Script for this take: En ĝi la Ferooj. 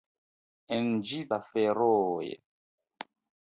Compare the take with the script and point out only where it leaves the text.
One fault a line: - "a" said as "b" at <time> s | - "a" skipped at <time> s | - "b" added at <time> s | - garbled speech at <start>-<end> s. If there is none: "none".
none